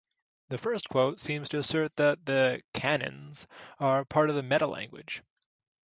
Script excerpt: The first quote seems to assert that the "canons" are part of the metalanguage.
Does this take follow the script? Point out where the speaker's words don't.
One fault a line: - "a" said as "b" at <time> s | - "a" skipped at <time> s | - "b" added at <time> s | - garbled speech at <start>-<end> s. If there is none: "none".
none